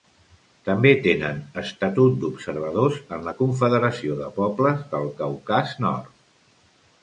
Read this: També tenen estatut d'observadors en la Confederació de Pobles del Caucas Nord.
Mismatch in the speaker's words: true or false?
false